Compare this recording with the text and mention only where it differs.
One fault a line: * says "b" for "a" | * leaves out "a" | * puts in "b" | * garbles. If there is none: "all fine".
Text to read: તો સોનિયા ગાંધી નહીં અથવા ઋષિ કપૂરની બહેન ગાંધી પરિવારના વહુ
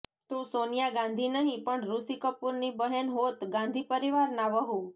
* says "પણ" for "અથવા"
* puts in "હોત"